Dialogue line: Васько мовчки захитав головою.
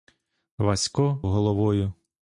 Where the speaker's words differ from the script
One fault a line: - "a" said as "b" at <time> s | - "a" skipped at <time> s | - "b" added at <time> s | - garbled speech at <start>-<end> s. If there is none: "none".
- "мовчки захитав" skipped at 1.2 s